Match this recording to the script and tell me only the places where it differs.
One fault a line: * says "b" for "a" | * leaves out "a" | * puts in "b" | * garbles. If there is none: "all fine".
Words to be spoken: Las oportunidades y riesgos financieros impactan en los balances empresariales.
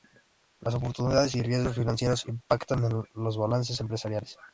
all fine